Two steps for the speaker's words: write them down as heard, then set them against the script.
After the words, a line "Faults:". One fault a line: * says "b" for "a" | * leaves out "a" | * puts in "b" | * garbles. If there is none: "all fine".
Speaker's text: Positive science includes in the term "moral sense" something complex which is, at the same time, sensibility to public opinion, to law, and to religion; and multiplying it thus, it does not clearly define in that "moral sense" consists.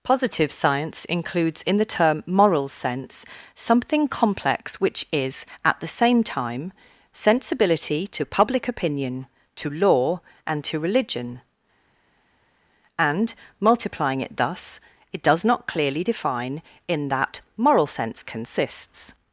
Positive science includes in the term "moral sense" something complex which is, at the same time, sensibility to public opinion, to law, and to religion; and multiplying it thus, it does not clearly define in that "moral sense" consists.
Faults:
all fine